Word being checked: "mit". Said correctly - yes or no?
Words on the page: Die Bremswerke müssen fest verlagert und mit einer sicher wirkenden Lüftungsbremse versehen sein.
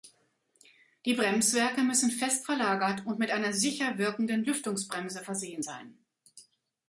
yes